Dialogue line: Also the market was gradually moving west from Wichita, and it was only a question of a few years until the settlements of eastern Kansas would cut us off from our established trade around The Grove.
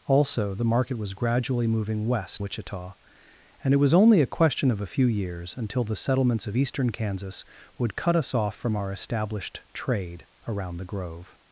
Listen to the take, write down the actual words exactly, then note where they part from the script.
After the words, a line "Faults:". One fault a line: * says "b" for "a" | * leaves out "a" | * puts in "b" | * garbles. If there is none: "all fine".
Also the market was gradually moving west Wichita, and it was only a question of a few years until the settlements of eastern Kansas would cut us off from our established trade around The Grove.
Faults:
* leaves out "from"